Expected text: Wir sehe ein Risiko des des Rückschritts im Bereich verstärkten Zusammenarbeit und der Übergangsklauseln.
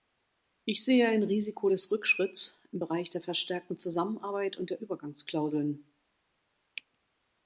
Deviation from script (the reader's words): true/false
true